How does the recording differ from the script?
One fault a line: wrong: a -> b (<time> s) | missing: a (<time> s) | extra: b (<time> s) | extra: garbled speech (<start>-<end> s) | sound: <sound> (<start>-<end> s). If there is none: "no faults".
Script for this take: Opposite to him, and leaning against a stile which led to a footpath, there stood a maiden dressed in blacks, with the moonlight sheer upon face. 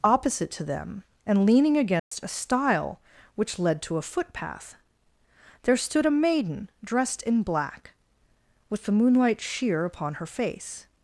wrong: him -> them (0.6 s)
sound: dropout (2.0-2.1 s)
wrong: blacks -> black (7.4 s)
extra: her (10.1 s)